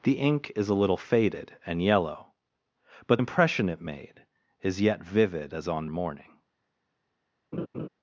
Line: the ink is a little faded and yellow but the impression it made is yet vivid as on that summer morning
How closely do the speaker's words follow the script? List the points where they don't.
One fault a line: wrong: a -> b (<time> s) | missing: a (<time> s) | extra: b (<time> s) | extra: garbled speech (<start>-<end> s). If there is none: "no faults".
missing: the (3.2 s)
missing: that summer (5.9 s)